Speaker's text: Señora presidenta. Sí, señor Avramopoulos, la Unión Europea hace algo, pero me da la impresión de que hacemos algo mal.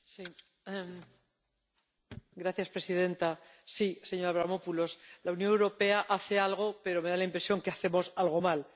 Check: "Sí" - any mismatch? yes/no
no